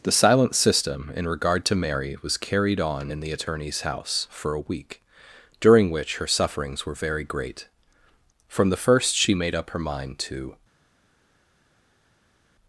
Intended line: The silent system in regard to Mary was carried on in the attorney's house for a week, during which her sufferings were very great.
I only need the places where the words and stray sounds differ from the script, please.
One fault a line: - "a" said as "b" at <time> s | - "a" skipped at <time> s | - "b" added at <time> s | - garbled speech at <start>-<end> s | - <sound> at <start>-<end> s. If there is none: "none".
- "From the first she made up her mind to" added at 8.5 s